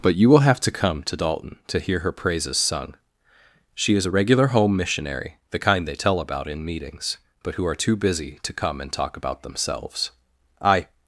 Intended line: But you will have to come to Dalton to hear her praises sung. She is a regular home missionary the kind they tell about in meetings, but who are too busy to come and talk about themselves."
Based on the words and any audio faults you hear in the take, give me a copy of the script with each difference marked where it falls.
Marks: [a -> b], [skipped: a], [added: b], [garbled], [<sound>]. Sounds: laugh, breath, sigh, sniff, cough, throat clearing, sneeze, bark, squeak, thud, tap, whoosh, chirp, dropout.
But you will have to come to Dalton to hear her praises sung. She is a regular home missionary the kind they tell about in meetings, but who are too busy to come and talk about themselves." [added: I]